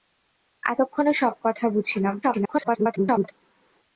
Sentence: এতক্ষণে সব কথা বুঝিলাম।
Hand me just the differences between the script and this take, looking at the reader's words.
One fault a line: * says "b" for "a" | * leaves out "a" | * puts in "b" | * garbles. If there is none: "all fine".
* garbles